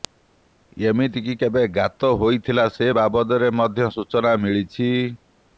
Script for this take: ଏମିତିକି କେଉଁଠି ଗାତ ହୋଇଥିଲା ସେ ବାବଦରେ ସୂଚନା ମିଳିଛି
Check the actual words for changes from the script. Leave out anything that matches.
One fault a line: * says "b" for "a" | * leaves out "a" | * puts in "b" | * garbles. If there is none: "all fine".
* says "କେବେ" for "କେଉଁଠି"
* puts in "ମଧ୍ୟ"